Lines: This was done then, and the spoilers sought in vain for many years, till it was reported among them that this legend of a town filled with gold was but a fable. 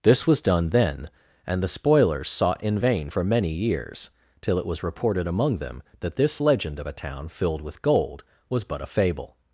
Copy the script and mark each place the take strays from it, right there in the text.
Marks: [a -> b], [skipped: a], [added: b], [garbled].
This was done then, and the spoilers sought in vain for many years, till it was reported among them that this legend of a town filled with gold was but a fable.